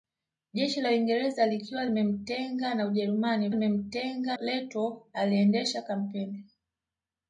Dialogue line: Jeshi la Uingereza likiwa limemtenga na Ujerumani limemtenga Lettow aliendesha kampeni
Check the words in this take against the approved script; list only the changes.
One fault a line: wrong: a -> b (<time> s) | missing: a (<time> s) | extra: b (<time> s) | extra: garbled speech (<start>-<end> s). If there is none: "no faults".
no faults